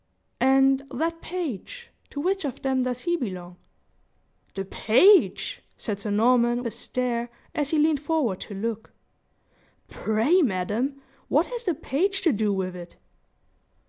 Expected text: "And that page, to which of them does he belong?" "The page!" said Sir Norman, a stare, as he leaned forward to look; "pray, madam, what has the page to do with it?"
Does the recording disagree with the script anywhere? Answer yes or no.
no